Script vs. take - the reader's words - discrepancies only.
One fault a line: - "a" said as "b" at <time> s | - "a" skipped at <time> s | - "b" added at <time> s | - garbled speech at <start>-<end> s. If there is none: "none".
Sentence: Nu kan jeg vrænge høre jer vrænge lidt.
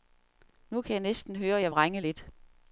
- "vrænge" said as "næsten" at 1.0 s